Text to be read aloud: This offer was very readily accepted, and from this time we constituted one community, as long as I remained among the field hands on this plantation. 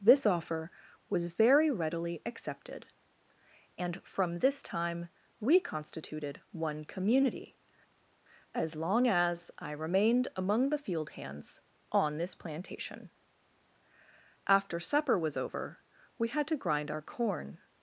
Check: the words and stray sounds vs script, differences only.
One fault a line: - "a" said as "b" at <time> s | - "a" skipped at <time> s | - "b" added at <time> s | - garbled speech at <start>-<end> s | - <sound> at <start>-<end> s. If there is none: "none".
- "After supper was over we had to grind our corn" added at 14.5 s